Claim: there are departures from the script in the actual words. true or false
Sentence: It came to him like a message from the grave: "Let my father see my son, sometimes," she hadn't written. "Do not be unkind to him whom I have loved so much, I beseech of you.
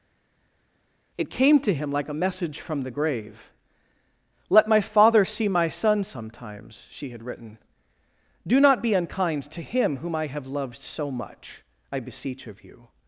true